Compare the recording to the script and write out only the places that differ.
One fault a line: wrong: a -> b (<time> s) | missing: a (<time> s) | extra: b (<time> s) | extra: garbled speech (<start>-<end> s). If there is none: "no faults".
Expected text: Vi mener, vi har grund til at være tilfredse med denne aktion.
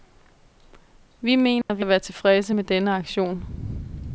missing: har grund til (1.9 s)